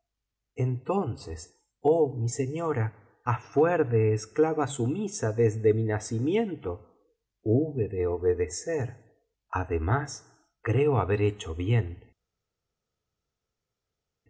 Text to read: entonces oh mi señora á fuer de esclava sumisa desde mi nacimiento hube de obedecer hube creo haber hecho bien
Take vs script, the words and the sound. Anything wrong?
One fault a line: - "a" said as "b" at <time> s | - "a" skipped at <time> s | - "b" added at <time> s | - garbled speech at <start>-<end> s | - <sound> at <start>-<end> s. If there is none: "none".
- "hube" said as "además" at 9.5 s